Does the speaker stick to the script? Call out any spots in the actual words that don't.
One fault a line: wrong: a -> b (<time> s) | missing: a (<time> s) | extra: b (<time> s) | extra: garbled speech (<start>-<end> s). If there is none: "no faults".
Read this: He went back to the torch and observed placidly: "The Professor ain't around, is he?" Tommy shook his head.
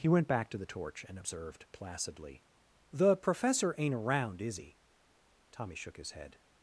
no faults